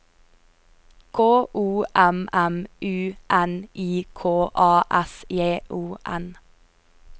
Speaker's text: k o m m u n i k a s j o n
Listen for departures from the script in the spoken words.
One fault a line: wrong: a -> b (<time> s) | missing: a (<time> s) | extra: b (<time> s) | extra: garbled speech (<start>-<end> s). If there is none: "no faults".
no faults